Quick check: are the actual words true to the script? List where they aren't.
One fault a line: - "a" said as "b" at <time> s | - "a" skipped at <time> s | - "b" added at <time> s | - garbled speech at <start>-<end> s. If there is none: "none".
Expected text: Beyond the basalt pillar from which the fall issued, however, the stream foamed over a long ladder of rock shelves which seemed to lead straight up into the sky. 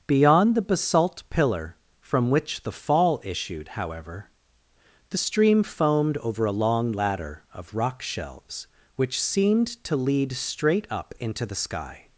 none